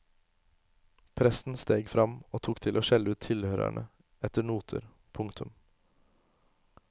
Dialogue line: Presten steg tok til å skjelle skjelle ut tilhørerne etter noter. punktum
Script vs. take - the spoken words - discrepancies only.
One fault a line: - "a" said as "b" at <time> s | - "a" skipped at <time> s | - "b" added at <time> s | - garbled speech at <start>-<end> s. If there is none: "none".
- "fram og" added at 1.9 s
- "skjelle" skipped at 3.1 s